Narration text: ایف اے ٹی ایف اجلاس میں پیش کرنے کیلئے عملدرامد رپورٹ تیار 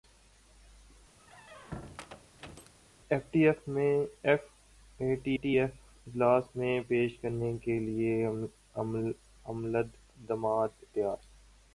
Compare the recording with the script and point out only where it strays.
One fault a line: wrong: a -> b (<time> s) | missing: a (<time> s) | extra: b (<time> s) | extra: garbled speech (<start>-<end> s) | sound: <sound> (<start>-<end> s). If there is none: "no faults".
sound: squeak (1.2-2.7 s)
extra: ٹی (5.3 s)
missing: رپورٹ (10.7 s)